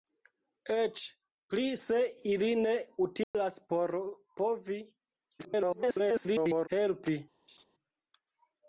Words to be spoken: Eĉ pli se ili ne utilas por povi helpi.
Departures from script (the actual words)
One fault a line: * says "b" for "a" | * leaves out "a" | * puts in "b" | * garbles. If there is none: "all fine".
* garbles